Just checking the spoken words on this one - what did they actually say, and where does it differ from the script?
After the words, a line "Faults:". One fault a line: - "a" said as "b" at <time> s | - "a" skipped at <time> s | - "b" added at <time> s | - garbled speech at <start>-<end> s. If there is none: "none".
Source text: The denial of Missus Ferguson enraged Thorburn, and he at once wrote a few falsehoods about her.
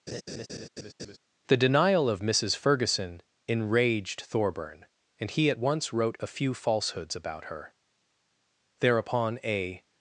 The denial of Missus Ferguson enraged Thorburn, and he at once wrote a few falsehoods about her. Thereupon a
Faults:
- "Thereupon a" added at 8.8 s